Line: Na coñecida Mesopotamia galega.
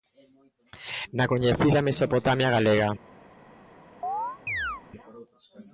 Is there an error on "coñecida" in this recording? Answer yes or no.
no